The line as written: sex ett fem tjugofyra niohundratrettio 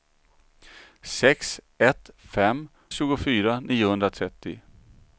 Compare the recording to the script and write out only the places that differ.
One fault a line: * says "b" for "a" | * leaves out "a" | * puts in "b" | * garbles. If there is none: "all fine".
all fine